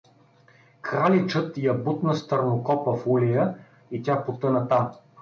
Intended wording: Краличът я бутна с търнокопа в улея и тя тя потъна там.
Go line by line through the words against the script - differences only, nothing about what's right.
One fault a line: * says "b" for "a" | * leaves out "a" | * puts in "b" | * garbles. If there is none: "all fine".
* leaves out "тя"